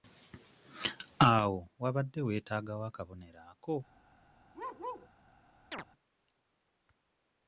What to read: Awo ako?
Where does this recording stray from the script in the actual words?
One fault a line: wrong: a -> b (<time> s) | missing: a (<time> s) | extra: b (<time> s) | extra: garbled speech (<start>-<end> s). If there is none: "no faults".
extra: wabadde weetaagawo akabonero (1.8 s)